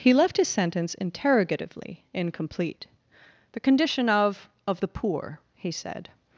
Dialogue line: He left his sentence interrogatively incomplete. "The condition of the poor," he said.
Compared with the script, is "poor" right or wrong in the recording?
right